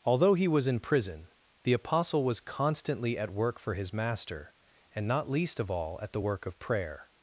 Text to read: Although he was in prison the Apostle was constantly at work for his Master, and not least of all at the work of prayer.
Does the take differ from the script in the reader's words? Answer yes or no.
no